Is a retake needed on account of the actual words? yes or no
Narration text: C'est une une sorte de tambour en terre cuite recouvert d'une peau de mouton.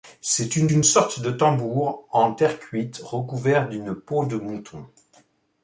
no